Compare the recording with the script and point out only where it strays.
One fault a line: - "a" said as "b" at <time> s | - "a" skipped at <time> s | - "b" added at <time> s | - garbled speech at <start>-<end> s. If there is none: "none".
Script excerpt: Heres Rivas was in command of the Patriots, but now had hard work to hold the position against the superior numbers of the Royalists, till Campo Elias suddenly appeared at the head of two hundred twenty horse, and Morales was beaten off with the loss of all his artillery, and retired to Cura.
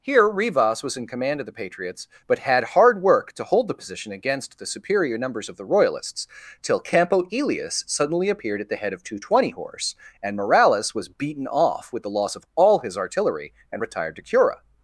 - "Heres" said as "Here" at 0.0 s
- "now" skipped at 2.4 s